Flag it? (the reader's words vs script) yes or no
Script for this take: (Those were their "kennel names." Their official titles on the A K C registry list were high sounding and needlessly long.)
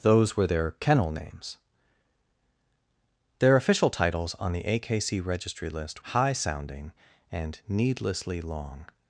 yes